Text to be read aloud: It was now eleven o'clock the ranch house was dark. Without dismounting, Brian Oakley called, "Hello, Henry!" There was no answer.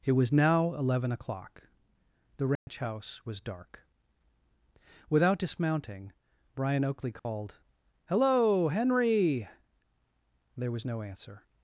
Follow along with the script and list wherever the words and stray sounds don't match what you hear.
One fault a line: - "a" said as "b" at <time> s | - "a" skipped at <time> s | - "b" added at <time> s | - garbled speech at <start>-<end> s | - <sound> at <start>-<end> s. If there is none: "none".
- dropout at 2.6-2.7 s
- dropout at 7.2-7.3 s